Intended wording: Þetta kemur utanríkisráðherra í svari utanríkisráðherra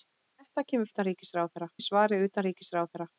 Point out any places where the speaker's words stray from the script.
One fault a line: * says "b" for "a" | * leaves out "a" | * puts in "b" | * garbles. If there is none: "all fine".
all fine